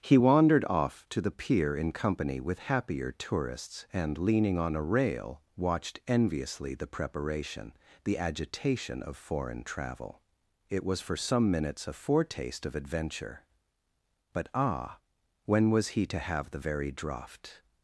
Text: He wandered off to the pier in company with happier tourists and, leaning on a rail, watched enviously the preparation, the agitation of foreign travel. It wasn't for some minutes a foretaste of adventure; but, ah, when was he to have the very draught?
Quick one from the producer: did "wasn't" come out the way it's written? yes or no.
no